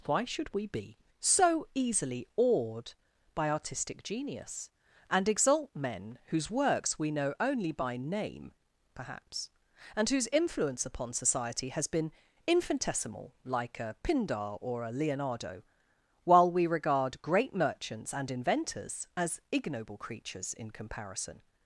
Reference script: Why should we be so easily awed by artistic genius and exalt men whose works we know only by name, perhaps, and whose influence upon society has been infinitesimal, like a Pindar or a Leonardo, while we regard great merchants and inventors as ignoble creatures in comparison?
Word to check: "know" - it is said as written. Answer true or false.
true